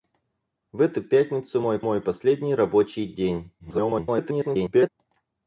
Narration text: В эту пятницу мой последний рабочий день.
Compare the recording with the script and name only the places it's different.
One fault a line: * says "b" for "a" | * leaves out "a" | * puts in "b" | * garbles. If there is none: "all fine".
* puts in "мой"
* garbles